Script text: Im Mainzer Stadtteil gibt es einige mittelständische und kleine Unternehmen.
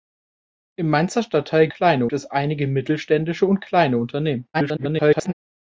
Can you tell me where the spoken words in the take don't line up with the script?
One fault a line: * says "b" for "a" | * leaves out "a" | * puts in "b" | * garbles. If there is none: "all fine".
* says "kleine" for "gibt"
* garbles